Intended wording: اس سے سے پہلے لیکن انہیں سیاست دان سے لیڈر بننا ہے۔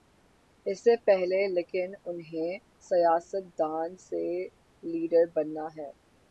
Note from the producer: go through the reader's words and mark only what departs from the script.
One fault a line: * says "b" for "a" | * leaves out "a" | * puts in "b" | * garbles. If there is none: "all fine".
* leaves out "سے"